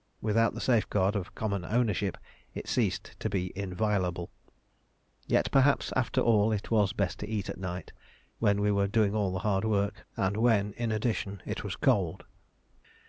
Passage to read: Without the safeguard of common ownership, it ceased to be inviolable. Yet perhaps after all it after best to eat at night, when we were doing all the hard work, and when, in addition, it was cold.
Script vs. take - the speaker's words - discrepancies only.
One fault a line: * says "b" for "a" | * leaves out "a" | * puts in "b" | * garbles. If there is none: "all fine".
* says "was" for "after"